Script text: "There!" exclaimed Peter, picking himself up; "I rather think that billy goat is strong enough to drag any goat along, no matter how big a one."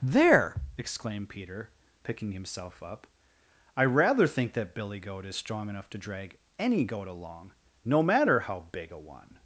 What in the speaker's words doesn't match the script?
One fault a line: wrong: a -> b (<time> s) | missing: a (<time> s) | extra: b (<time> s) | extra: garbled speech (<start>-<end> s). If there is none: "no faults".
no faults